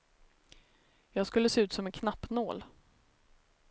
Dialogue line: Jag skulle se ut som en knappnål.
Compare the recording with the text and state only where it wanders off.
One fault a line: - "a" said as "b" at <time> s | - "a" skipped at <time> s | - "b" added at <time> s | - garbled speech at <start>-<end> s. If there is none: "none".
none